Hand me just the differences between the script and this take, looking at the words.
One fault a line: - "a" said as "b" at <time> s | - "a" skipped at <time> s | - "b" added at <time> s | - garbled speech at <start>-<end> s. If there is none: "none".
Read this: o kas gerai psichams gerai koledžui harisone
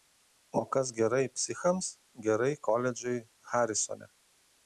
none